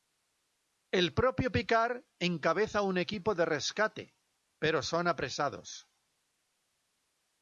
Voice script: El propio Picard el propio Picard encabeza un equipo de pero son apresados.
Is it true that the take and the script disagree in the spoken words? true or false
true